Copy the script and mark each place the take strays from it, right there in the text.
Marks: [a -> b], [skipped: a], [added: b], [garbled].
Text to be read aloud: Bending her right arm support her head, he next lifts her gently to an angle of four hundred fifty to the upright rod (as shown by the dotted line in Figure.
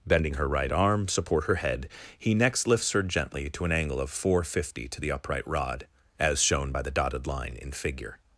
Bending her right arm support her head, he next lifts her gently to an angle of four hundred fifty to the upright rod (as shown by the dotted line in Figure.